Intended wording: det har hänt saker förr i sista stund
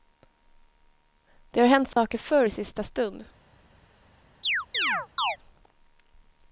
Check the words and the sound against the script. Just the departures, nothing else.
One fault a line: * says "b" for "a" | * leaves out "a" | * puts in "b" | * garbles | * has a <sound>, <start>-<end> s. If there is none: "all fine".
* has a dropout, 1.9-2.0 s
* has a chirp, 4.4-5.4 s